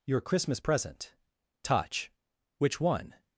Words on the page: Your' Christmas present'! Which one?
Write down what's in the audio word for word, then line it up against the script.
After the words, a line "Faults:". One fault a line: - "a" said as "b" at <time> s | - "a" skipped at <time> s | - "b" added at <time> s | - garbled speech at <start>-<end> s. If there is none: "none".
Your' Christmas present'! touch Which one?
Faults:
- "touch" added at 1.6 s